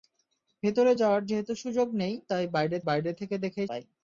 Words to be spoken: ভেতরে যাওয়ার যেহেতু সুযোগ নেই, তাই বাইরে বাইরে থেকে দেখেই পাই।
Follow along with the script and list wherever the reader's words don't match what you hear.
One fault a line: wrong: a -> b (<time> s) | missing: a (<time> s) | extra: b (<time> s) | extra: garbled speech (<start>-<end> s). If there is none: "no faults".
no faults